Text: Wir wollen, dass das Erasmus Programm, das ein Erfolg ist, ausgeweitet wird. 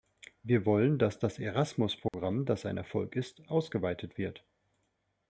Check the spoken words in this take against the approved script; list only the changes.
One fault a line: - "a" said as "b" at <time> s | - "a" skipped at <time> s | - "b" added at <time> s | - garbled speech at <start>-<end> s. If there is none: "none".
none